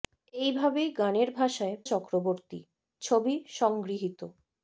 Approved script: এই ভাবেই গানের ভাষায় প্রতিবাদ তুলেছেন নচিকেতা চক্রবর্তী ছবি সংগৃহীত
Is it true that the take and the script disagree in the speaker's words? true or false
true